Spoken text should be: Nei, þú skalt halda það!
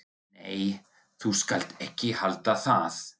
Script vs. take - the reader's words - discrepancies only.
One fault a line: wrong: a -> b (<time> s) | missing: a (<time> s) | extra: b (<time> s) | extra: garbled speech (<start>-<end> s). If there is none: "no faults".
extra: ekki (1.9 s)